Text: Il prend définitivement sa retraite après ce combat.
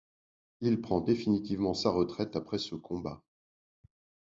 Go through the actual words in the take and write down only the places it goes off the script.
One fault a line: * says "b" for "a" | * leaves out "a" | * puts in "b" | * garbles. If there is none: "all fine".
all fine